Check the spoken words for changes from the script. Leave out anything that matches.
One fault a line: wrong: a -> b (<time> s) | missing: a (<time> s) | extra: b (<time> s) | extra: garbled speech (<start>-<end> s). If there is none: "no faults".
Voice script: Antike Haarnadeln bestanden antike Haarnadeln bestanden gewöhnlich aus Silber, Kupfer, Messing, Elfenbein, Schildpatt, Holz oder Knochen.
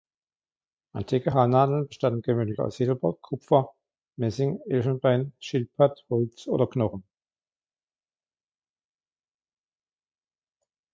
missing: antike Haarnadeln bestanden (2.2 s)